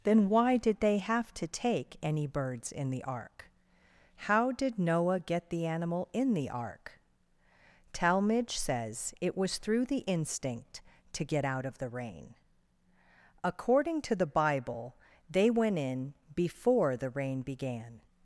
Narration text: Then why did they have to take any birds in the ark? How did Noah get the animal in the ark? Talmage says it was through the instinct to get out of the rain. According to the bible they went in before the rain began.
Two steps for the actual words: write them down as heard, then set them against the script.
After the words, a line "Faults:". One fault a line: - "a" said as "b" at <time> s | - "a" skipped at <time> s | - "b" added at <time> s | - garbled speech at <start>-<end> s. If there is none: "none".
Then why did they have to take any birds in the ark? How did Noah get the animal in the ark? Talmage says it was through the instinct to get out of the rain. According to the bible they went in before the rain began.
Faults:
none